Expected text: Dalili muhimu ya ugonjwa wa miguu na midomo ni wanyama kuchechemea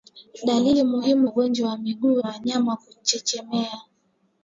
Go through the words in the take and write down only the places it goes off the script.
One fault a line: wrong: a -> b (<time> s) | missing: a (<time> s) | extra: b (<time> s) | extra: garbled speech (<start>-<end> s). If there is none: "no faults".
missing: ya (1.3 s)
missing: na midomo ni (2.2 s)